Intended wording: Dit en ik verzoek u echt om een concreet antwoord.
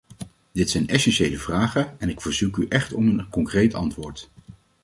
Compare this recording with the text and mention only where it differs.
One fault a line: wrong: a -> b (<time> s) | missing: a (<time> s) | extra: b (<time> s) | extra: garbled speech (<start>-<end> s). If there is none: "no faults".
extra: zijn essentiële vragen (0.7 s)